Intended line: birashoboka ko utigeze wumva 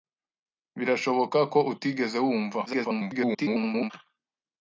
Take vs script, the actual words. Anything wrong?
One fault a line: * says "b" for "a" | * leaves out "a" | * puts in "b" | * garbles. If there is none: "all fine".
* garbles